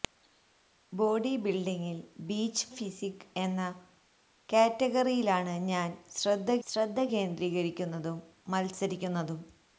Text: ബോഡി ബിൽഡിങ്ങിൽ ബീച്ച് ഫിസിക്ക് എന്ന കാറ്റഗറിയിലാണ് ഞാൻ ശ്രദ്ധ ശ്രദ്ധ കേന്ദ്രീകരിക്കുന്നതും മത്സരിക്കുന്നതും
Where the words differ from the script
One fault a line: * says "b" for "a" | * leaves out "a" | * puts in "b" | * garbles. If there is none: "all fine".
all fine